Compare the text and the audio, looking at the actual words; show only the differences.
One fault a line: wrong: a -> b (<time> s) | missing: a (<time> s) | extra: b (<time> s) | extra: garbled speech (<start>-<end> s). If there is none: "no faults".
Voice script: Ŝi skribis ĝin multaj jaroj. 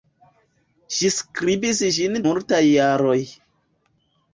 no faults